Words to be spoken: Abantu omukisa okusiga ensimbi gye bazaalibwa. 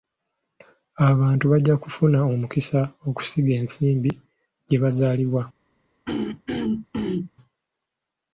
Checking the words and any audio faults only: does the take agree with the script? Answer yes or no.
no